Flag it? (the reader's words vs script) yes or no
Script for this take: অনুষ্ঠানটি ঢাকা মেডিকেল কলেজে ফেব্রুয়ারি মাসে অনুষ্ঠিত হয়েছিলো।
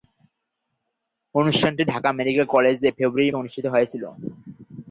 yes